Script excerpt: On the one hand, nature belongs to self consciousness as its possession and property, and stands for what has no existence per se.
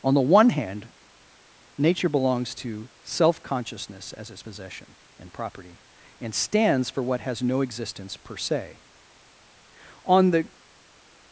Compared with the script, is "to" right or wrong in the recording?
right